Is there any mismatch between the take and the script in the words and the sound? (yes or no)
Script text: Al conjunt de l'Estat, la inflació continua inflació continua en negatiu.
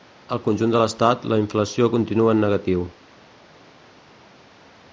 yes